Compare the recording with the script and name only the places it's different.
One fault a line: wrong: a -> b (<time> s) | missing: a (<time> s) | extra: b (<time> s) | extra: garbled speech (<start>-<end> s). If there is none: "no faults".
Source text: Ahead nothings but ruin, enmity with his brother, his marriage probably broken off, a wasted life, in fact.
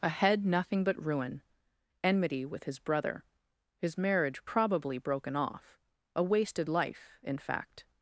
wrong: nothings -> nothing (0.4 s)